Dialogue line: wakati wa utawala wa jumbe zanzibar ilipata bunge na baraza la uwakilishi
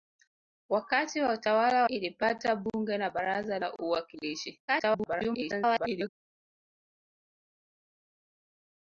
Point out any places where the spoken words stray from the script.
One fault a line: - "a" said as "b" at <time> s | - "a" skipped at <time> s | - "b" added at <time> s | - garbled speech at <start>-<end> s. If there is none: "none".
- "wa jumbe zanzibar" skipped at 1.8 s
- garbled speech at 4.7-6.1 s